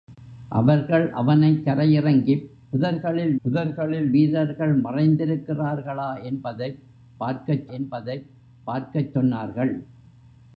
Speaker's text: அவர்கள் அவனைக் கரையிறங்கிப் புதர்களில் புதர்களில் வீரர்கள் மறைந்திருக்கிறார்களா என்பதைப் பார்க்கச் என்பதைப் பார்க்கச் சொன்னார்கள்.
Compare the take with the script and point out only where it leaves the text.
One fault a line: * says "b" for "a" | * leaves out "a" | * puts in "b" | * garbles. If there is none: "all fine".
all fine